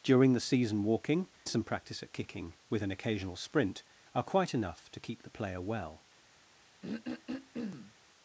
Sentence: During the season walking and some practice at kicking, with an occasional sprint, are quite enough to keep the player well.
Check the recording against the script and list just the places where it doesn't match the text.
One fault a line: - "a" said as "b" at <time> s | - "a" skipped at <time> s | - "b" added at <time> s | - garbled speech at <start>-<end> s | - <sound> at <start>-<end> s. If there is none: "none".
- "and" skipped at 1.3 s
- throat clearing at 6.8-7.9 s